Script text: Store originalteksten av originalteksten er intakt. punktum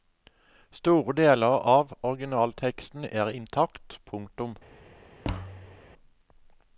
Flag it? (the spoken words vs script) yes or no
yes